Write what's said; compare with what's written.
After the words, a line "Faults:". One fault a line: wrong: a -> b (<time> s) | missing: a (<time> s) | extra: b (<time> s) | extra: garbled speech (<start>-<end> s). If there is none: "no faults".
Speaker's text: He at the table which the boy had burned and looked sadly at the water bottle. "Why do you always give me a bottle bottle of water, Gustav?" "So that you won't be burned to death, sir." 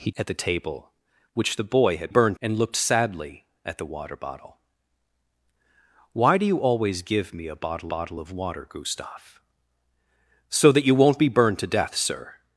He at the table which the boy had burned and looked sadly at the water bottle. "Why do you always give me a bottle bottle of water, Gustav?" "So that you won't be burned to death, sir."
Faults:
no faults